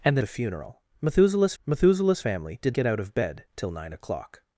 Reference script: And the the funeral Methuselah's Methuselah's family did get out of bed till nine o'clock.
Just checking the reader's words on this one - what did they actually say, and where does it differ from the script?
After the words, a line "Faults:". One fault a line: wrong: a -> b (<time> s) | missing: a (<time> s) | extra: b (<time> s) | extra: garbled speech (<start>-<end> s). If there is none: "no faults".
And the the funeral Methuselah's Methuselah's family did get out of bed till nine o'clock.
Faults:
no faults